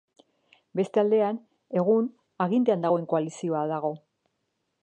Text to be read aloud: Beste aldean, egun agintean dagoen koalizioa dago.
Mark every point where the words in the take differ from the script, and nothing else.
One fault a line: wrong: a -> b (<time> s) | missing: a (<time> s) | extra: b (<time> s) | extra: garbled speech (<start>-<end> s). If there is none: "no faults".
no faults